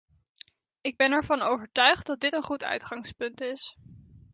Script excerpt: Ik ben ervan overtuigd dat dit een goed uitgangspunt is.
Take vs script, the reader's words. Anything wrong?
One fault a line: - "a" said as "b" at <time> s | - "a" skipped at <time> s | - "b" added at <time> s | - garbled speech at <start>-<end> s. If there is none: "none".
none